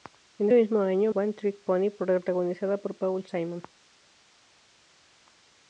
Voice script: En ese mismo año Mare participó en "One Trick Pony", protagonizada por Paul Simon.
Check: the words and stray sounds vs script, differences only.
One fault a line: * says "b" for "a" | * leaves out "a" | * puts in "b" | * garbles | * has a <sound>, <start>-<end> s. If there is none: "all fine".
* leaves out "ese"
* leaves out "Mare participó en"